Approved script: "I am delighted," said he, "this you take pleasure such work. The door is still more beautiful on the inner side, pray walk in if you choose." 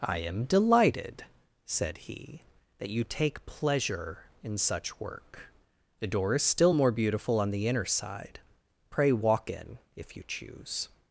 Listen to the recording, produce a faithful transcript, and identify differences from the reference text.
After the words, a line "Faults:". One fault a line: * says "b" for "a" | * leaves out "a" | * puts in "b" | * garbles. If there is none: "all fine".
"I am delighted," said he, "that you take pleasure in such work. The door is still more beautiful on the inner side, pray walk in if you choose."
Faults:
* says "that" for "this"
* puts in "in"